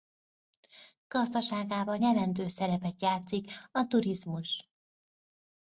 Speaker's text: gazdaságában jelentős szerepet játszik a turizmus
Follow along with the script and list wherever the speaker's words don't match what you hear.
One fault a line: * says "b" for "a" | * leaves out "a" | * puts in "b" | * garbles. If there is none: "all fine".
all fine